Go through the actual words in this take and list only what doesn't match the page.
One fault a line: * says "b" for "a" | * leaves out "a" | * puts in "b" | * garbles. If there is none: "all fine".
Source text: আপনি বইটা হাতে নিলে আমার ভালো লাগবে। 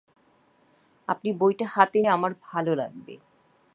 * leaves out "নিলে"